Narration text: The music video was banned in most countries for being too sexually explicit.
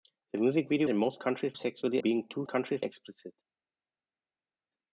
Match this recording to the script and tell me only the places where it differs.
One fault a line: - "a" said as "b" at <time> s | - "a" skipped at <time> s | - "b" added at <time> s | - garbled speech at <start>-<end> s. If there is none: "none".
- "was banned" skipped at 0.9 s
- "for" said as "sexually" at 1.5 s
- "sexually" said as "countries" at 2.5 s